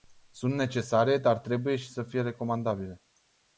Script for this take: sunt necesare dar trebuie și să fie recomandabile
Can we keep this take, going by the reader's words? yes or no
yes